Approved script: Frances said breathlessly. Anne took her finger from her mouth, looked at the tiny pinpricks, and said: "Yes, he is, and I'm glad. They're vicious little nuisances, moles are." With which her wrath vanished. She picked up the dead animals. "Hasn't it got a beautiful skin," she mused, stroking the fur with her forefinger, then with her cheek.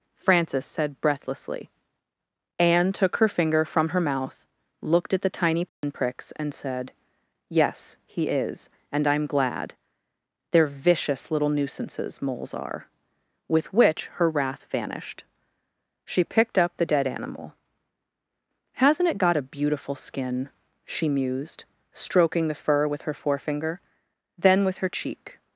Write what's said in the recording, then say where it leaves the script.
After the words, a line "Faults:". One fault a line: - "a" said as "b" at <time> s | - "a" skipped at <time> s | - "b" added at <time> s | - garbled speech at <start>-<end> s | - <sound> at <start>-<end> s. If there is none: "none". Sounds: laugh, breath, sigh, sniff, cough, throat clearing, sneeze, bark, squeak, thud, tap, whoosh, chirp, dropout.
Frances said breathlessly. Anne took her finger from her mouth, looked at the tiny pinpricks, and said: "Yes, he is, and I'm glad. They're vicious little nuisances, moles are." With which her wrath vanished. She picked up the dead animal. "Hasn't it got a beautiful skin," she mused, stroking the fur with her forefinger, then with her cheek.
Faults:
- dropout at 5.7-5.8 s
- "animals" said as "animal" at 17.1 s